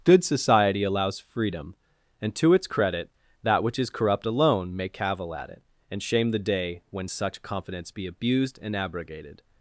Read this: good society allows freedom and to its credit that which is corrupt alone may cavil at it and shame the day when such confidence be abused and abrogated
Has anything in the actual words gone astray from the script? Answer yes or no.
no